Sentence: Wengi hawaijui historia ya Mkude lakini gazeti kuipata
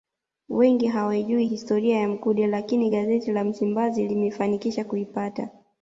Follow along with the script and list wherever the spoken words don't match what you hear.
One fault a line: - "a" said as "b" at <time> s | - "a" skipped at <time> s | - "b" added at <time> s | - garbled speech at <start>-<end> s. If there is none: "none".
- "la Msimbazi limefanikisha" added at 3.3 s